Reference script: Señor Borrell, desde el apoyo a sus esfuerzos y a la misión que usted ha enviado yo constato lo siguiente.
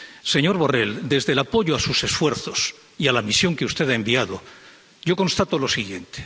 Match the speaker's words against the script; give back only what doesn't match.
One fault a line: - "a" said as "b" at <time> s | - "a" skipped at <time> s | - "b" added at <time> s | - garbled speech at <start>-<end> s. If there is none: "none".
none